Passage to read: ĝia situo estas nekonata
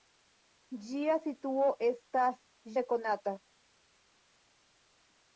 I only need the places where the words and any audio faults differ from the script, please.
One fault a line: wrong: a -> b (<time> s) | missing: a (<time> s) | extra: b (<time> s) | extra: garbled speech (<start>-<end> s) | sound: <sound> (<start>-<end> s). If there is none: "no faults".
no faults